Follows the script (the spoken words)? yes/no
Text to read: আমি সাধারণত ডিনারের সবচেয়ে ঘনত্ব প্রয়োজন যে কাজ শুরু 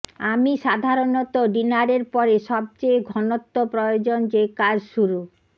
no